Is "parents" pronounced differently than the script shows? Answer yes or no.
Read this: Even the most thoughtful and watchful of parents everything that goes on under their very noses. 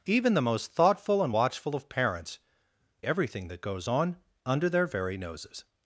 no